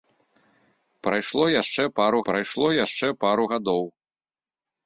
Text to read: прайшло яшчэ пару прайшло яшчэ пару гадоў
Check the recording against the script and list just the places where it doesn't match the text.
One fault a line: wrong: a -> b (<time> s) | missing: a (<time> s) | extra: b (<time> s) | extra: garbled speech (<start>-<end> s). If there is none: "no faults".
no faults